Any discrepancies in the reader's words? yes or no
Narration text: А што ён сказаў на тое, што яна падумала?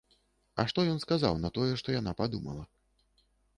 no